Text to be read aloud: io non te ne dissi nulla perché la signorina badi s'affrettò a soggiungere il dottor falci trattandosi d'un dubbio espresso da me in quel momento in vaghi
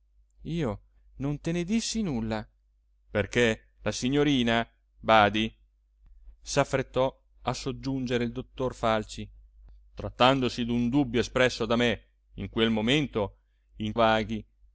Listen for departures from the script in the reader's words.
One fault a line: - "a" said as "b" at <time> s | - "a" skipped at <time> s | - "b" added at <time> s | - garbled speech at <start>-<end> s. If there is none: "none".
none